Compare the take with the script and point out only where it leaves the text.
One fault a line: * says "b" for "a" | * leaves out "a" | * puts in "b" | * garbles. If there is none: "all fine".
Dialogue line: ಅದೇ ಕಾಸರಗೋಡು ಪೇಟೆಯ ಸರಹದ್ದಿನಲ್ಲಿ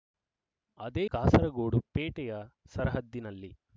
all fine